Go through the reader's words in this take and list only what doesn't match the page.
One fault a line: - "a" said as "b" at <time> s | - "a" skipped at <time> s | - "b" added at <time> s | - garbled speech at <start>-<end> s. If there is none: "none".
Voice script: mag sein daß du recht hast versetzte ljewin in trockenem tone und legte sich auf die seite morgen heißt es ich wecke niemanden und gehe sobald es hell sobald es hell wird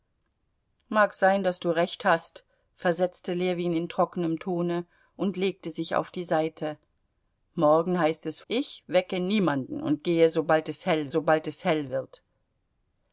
none